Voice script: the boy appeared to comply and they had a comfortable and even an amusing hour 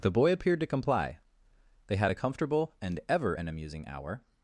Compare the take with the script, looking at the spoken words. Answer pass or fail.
fail